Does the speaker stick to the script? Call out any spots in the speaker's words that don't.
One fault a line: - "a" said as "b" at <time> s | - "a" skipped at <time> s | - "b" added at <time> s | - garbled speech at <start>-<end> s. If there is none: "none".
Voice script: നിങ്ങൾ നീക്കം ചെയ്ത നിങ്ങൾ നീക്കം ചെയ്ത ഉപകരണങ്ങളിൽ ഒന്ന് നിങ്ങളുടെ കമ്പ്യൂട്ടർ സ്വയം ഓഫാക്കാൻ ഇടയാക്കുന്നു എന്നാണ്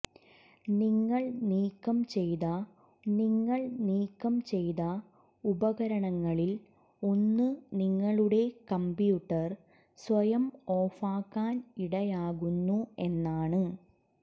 none